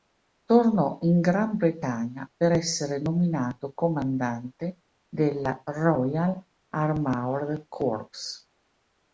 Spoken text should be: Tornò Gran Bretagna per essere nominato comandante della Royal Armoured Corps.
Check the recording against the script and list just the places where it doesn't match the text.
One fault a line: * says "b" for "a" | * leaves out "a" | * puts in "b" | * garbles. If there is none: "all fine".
* puts in "in"